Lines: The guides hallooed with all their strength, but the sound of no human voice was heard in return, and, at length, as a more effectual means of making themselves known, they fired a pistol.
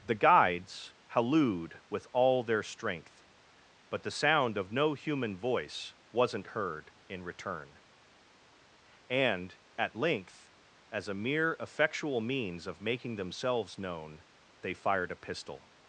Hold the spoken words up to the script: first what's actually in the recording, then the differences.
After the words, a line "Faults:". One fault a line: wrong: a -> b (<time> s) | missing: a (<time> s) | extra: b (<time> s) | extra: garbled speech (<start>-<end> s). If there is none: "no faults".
The guides hallooed with all their strength, but the sound of no human voice wasn't heard in return, and, at length, as a mere effectual means of making themselves known, they fired a pistol.
Faults:
wrong: was -> wasn't (6.1 s)
wrong: more -> mere (11.1 s)